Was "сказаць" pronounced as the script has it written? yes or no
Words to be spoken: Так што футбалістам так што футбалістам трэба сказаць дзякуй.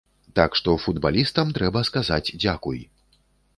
yes